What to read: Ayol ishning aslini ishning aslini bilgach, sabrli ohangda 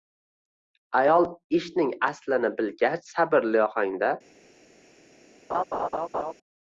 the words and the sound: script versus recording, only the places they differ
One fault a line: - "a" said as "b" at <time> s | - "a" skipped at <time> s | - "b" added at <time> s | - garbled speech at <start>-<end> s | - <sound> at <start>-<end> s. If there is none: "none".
- "ishning aslini" skipped at 2.5 s
- laugh at 5.5-6.3 s